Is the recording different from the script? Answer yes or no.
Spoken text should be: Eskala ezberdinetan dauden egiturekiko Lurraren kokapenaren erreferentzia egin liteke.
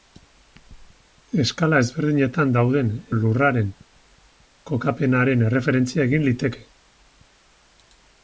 yes